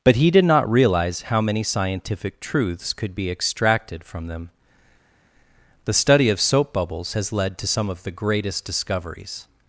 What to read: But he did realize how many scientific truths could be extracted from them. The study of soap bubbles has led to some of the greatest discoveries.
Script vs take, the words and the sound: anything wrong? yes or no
yes